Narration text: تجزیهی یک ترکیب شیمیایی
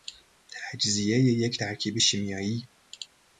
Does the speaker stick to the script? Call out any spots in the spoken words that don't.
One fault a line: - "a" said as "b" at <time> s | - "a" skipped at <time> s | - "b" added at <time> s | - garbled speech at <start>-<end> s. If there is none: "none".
none